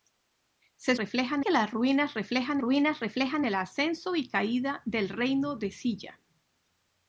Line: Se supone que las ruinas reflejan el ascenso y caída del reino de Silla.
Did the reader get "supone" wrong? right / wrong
wrong